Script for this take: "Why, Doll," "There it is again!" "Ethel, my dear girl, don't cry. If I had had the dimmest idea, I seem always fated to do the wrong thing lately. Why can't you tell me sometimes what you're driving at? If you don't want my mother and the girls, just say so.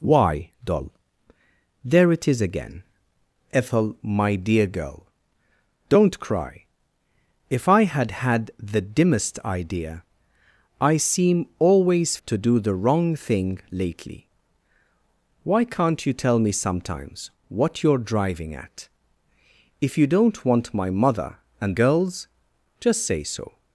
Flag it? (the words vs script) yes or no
yes